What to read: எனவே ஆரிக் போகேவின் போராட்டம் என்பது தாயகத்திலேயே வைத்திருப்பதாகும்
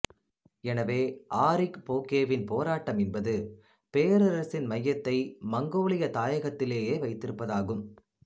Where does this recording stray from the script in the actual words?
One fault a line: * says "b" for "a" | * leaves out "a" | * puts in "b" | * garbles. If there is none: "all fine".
* puts in "பேரரசின் மையத்தை மங்கோலிய"